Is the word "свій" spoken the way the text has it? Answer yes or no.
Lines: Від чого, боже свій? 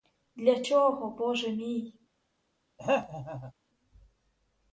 no